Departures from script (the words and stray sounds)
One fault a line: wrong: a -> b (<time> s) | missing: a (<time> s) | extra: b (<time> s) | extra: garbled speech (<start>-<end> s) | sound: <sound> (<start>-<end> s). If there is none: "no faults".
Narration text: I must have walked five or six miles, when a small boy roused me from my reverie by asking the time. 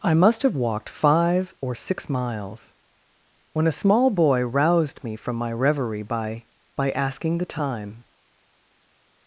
extra: by (6.7 s)